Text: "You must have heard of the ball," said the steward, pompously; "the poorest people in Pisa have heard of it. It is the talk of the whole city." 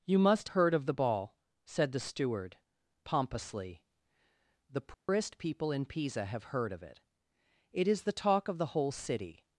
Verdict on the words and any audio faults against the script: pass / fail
fail